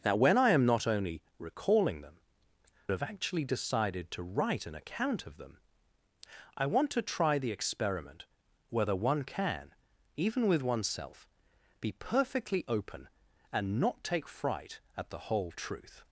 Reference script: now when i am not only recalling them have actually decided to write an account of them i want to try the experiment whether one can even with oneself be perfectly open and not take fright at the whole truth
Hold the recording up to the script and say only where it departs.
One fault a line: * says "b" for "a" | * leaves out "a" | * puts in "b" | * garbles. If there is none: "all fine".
all fine